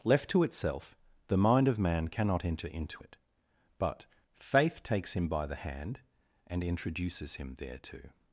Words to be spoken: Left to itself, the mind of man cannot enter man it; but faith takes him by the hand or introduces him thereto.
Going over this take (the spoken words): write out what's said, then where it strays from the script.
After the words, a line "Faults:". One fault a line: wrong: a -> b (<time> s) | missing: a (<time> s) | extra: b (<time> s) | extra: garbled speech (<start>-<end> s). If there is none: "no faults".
Left to itself, the mind of man cannot enter into it; but faith takes him by the hand and introduces him thereto.
Faults:
wrong: man -> into (2.7 s)
wrong: or -> and (6.5 s)